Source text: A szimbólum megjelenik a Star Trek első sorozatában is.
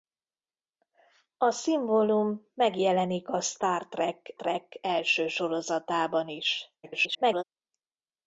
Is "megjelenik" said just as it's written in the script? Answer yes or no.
yes